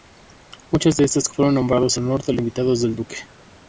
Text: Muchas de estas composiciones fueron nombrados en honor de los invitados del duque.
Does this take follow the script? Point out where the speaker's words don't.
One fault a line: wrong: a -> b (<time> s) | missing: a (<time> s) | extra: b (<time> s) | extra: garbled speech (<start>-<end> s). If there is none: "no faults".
missing: composiciones (1.3 s)
missing: en (2.0 s)
missing: los (2.3 s)